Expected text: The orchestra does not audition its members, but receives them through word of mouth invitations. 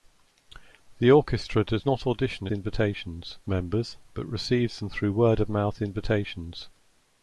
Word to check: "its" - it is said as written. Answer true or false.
false